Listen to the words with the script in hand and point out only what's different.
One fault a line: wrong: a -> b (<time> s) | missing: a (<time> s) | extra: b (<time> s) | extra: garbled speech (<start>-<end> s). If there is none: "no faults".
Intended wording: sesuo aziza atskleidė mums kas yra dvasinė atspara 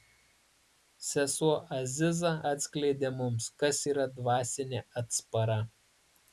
no faults